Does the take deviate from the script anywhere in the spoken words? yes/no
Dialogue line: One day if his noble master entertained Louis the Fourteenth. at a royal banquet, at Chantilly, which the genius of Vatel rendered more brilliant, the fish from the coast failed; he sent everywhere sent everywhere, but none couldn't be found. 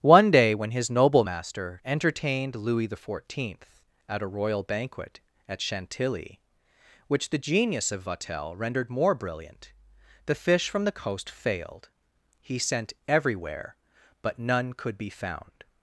yes